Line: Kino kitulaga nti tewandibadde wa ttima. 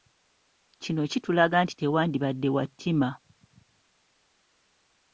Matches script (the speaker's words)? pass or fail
pass